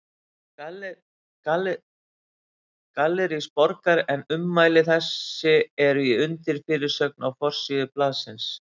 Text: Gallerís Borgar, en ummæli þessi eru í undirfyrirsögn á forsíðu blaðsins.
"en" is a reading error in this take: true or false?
false